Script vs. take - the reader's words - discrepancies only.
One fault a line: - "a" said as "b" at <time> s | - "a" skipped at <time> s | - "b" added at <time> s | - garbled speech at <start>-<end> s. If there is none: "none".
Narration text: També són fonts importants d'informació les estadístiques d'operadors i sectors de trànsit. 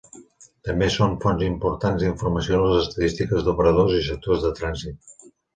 none